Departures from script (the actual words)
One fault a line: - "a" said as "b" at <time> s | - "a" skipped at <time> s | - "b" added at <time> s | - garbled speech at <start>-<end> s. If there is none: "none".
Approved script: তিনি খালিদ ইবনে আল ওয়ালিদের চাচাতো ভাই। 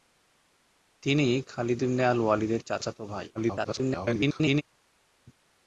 - garbled speech at 3.3-4.6 s